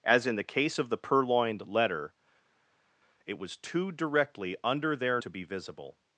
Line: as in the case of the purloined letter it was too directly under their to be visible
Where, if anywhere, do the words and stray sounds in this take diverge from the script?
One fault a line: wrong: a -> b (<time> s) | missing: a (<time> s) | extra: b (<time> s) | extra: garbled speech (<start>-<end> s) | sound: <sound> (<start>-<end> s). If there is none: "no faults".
no faults